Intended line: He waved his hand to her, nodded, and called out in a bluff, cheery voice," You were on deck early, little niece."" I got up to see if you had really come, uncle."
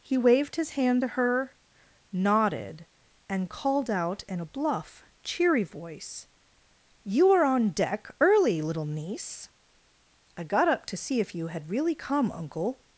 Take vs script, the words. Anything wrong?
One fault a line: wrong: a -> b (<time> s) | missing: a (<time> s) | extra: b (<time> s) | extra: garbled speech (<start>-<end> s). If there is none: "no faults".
wrong: were -> are (7.3 s)